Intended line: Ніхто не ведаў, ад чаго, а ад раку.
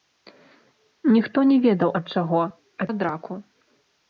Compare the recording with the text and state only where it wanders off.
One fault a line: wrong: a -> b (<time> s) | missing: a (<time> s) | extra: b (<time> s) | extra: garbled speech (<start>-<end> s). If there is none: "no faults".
no faults